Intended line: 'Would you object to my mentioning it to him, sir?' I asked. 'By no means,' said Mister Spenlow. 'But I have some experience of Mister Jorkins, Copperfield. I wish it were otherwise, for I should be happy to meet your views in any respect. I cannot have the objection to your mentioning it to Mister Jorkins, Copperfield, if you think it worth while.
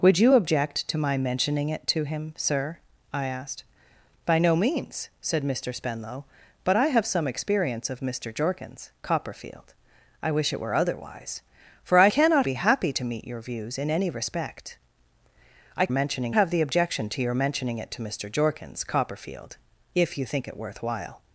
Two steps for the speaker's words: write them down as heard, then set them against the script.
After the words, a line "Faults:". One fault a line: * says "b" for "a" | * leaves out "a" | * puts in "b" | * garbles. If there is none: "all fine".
'Would you object to my mentioning it to him, sir?' I asked. 'By no means,' said Mister Spenlow. 'But I have some experience of Mister Jorkins, Copperfield. I wish it were otherwise, for I cannot be happy to meet your views in any respect. I mentioning have the objection to your mentioning it to Mister Jorkins, Copperfield, if you think it worth while.
Faults:
* says "cannot" for "should"
* says "mentioning" for "cannot"